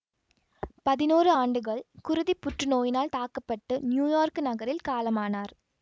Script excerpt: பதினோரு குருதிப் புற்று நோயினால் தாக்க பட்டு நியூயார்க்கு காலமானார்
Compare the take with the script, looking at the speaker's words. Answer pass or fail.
fail